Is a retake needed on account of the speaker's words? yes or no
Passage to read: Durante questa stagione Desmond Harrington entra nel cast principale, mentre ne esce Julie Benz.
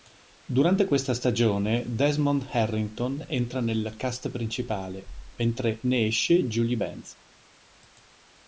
no